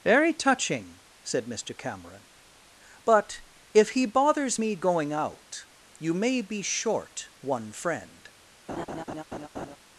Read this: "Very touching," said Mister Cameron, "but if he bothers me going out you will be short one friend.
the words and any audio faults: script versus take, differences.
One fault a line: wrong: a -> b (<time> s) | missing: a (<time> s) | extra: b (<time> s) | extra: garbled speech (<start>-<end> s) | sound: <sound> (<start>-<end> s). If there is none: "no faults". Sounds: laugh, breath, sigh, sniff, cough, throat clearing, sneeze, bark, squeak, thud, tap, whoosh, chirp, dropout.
wrong: will -> may (6.1 s)
sound: laugh (8.7-9.8 s)